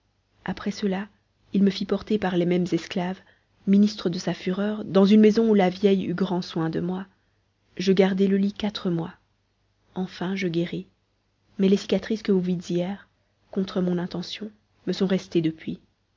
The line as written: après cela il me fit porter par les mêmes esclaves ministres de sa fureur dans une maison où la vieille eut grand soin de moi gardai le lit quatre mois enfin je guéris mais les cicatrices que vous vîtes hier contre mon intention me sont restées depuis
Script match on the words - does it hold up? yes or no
no